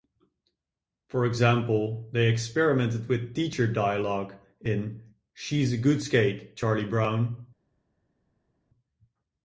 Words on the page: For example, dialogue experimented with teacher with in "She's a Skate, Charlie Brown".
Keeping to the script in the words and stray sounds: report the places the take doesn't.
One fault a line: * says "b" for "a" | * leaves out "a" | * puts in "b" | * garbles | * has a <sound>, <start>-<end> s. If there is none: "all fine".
* says "they" for "dialogue"
* says "dialogue" for "with"
* puts in "Good"